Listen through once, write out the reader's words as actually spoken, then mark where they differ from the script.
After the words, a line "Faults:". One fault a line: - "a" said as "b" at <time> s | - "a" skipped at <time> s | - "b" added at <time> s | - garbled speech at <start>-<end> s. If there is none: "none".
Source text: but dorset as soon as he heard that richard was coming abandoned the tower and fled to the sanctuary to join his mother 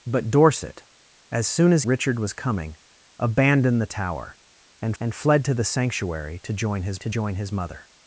but dorset as soon as richard was coming abandoned the tower and and fled to the sanctuary to join his to join his mother
Faults:
- "he heard that" skipped at 1.8 s
- "and" added at 5.0 s
- "to join his" added at 7.0 s